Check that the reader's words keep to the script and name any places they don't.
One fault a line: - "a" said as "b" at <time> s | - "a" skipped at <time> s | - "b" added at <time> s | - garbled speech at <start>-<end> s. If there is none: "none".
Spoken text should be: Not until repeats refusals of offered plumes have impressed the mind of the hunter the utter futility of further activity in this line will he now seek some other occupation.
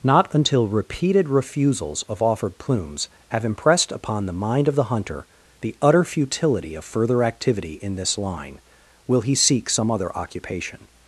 - "repeats" said as "repeated" at 0.7 s
- "upon" added at 3.9 s
- "now" skipped at 9.3 s